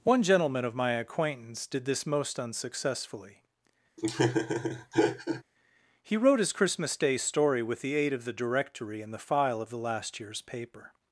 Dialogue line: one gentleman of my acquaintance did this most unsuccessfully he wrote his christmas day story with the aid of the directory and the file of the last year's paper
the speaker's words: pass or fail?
pass